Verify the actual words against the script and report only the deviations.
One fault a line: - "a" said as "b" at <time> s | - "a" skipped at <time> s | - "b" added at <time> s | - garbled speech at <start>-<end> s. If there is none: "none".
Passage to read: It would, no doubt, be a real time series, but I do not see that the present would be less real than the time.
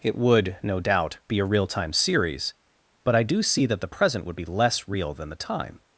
- "not" skipped at 3.4 s